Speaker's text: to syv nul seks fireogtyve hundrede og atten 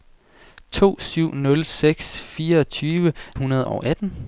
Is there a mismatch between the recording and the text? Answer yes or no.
no